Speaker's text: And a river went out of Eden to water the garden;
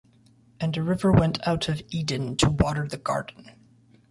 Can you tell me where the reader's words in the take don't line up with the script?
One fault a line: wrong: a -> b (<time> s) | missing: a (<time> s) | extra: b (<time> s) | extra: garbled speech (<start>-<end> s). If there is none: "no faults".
no faults